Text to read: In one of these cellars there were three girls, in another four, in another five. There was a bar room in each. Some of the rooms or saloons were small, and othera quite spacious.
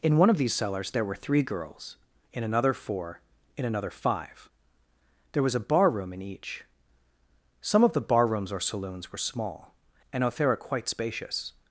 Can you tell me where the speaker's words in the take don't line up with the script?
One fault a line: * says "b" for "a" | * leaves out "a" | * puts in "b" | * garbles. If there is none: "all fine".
* puts in "bar"